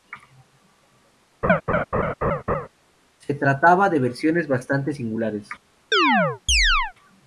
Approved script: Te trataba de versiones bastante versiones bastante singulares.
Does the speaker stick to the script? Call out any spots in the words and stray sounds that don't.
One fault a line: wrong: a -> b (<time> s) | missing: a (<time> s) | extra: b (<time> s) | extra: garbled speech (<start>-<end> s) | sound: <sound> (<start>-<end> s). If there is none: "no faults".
sound: laugh (1.4-2.7 s)
wrong: Te -> Se (3.2 s)
missing: versiones bastante (4.9 s)
sound: chirp (5.9-6.9 s)